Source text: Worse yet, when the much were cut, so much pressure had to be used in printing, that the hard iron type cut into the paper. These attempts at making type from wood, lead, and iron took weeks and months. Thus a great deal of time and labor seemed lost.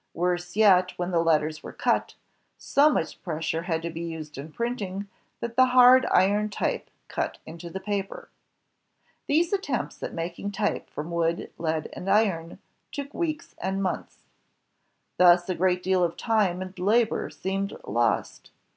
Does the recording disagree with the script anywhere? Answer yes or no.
yes